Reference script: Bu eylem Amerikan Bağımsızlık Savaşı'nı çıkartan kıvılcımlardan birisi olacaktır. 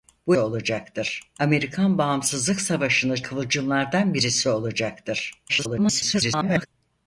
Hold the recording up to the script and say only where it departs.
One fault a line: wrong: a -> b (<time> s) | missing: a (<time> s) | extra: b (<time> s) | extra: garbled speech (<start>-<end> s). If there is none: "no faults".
wrong: eylem -> olacaktır (0.4 s)
missing: çıkartan (3.2 s)
extra: garbled speech (5.5-6.7 s)